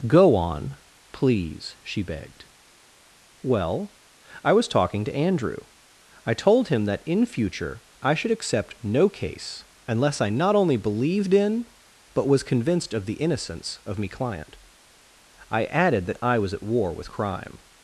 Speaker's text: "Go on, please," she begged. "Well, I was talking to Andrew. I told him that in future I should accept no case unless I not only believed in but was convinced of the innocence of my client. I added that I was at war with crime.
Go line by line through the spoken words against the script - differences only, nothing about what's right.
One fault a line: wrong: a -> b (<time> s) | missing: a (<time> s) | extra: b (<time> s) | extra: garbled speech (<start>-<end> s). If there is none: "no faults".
wrong: my -> me (14.0 s)